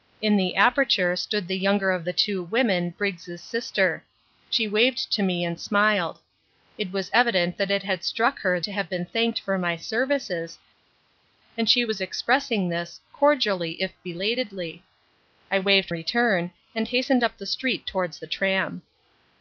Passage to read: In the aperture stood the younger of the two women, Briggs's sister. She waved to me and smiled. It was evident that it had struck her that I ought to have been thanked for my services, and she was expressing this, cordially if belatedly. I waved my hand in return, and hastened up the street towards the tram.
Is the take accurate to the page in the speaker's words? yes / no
no